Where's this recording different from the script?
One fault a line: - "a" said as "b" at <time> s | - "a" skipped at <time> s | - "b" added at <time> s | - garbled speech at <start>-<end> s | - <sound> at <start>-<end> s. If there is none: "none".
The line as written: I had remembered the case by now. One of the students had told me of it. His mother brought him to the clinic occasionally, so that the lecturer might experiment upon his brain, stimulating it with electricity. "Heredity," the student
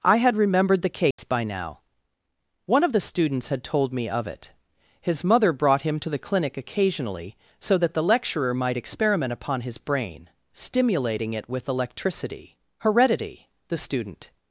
- dropout at 1.1-1.2 s